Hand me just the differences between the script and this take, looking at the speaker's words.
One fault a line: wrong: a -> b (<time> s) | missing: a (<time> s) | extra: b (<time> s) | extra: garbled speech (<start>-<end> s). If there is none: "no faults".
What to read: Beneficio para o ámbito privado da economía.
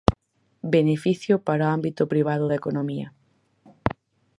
no faults